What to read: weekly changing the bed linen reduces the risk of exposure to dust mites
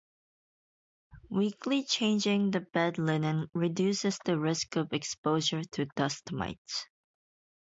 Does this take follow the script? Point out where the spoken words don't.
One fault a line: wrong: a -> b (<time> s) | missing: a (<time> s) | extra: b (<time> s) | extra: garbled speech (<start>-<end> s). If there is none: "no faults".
no faults